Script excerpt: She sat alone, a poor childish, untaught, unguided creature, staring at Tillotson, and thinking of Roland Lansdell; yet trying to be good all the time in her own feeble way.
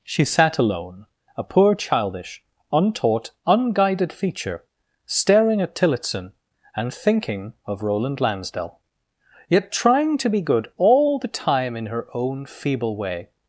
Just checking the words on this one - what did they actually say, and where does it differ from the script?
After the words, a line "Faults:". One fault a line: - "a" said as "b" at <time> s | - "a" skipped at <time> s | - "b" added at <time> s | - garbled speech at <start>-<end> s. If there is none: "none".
She sat alone, a poor childish, untaught, unguided feature, staring at Tillotson, and thinking of Roland Lansdell; yet trying to be good all the time in her own feeble way.
Faults:
- "creature" said as "feature" at 4.1 s